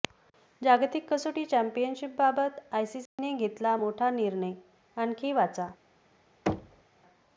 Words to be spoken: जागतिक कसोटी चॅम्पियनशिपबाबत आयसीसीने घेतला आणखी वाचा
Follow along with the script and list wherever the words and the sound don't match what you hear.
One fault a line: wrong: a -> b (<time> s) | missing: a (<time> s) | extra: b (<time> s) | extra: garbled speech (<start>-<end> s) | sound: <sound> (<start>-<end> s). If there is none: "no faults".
sound: dropout (3.1-3.2 s)
extra: मोठा निर्णय (3.8 s)
sound: thud (6.5-6.8 s)